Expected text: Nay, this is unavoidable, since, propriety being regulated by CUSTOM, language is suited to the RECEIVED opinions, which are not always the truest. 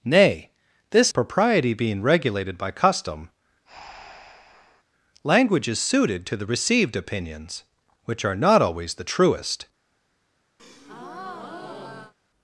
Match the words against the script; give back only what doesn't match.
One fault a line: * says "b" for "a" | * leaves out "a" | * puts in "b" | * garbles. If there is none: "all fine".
* leaves out "is unavoidable since"